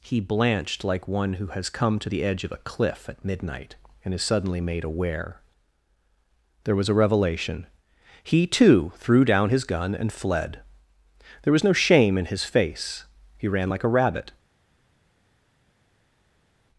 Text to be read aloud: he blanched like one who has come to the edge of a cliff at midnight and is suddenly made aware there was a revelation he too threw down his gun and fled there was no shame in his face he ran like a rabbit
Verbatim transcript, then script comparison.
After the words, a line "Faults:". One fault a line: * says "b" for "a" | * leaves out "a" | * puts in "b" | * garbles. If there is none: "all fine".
he blanched like one who has come to the edge of a cliff at midnight and is suddenly made aware there was a revelation he too threw down his gun and fled there was no shame in his face he ran like a rabbit
Faults:
all fine